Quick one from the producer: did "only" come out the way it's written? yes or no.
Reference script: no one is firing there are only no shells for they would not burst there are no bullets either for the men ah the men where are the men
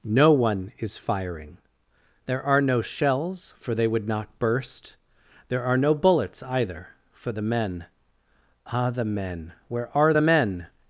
no